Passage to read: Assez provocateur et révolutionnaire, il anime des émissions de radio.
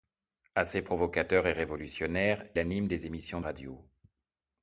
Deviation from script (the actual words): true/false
true